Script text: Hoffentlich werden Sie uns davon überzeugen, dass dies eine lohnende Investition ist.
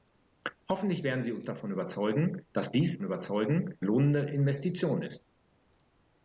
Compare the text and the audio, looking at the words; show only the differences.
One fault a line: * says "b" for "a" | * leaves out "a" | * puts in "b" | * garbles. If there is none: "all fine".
* says "überzeugen" for "eine"